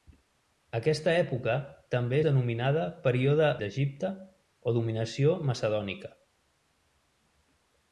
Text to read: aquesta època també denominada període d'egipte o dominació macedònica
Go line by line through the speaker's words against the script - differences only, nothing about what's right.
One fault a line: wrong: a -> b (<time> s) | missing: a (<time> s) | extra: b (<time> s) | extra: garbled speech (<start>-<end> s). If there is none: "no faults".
no faults